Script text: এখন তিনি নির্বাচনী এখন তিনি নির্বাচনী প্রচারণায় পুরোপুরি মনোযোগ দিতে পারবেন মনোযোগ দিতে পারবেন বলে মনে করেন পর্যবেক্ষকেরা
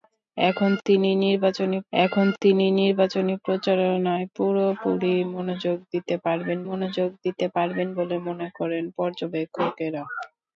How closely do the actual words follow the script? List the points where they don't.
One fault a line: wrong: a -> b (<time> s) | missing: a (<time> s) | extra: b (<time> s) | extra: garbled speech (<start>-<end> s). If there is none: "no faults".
no faults